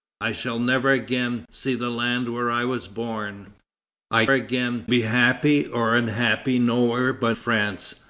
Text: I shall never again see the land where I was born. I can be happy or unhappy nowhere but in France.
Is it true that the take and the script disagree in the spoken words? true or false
true